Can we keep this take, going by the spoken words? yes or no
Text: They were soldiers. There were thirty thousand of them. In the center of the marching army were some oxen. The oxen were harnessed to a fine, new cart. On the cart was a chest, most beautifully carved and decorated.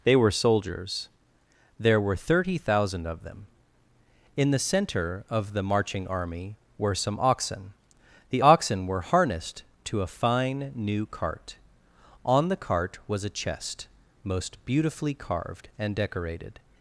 yes